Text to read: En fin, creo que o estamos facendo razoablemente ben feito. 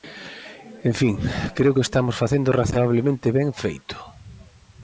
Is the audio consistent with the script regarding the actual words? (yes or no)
yes